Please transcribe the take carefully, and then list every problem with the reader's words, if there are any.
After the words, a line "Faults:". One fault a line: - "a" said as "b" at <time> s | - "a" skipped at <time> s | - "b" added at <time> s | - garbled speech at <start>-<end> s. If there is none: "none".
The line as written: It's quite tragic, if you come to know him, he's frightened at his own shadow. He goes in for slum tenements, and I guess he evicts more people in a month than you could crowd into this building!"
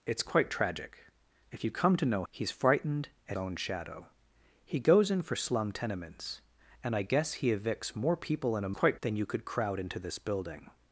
It's quite tragic, if you come to know he's frightened at own shadow. He goes in for slum tenements, and I guess he evicts more people in a quite than you could crowd into this building!"
Faults:
- "him" skipped at 2.2 s
- "his" skipped at 3.4 s
- "month" said as "quite" at 8.7 s